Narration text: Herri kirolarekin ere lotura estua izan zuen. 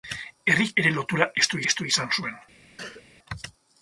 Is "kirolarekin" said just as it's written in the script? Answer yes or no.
no